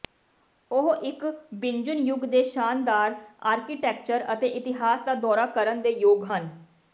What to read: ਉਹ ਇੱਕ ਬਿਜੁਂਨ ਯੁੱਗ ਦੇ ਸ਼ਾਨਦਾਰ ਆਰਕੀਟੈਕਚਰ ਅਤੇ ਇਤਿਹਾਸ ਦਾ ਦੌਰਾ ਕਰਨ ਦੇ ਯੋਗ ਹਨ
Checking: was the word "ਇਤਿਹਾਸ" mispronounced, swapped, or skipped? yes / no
no